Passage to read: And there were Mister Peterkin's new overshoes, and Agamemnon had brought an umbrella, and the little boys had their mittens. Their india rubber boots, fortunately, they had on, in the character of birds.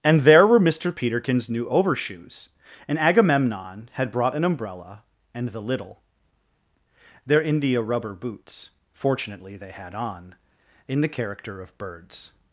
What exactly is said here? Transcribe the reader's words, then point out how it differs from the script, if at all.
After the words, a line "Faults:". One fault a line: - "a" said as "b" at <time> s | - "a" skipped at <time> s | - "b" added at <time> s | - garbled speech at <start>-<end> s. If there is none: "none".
And there were Mister Peterkin's new overshoes, and Agamemnon had brought an umbrella, and the little. Their india rubber boots, fortunately, they had on, in the character of birds.
Faults:
- "boys had their mittens" skipped at 6.0 s